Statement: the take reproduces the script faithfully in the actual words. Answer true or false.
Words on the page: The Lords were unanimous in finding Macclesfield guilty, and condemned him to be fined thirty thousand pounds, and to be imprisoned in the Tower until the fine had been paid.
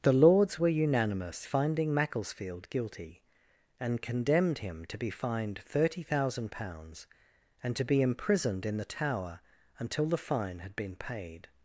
false